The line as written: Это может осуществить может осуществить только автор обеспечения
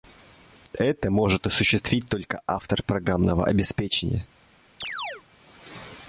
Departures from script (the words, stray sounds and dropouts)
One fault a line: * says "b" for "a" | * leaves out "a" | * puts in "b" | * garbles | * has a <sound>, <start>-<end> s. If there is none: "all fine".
* leaves out "может осуществить"
* puts in "программного"
* has a chirp, 4.8-5.2 s